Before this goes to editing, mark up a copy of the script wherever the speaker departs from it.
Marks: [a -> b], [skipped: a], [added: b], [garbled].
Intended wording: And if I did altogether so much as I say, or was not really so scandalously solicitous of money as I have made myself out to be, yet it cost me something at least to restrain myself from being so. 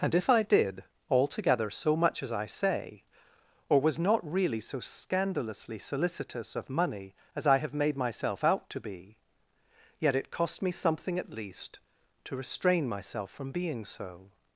And if I did altogether so much as I say, or was not really so scandalously solicitous of money as I have made myself out to be, yet it cost me something at least to restrain myself from being so.